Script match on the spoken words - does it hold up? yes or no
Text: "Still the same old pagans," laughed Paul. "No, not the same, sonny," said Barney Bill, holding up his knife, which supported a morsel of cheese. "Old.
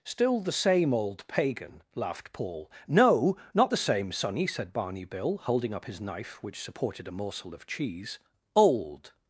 no